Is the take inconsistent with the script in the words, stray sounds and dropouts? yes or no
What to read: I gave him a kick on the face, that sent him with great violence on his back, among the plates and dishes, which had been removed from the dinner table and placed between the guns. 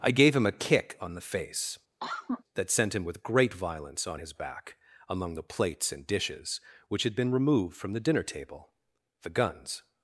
yes